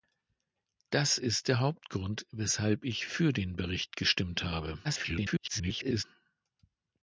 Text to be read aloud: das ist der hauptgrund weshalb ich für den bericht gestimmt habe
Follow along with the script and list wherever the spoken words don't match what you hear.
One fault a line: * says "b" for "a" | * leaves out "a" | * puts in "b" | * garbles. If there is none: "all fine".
* garbles